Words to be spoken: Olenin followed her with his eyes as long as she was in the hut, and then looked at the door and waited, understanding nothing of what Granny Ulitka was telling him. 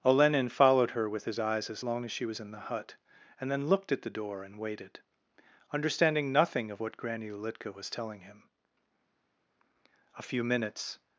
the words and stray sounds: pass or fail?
fail